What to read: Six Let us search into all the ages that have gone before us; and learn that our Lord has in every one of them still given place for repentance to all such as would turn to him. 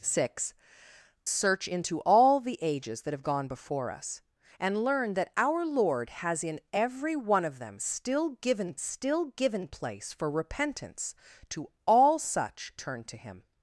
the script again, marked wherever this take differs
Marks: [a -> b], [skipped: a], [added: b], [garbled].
Six [skipped: Let us] search into all the ages that have gone before us; and learn that our Lord has in every one of them still given [added: still given] place for repentance to all such [skipped: as would] turn to him.